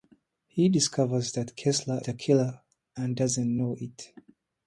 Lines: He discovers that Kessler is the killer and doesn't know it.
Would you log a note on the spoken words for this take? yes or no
yes